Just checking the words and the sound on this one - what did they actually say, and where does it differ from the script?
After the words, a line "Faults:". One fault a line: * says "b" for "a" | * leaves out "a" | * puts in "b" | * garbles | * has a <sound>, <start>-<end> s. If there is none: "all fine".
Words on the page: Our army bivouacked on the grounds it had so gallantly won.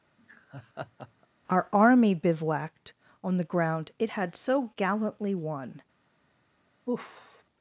Our army bivouacked on the ground it had so gallantly won.
Faults:
* has a laugh, 0.2-1.3 s
* says "ground" for "grounds"
* has a sigh, 6.9-7.4 s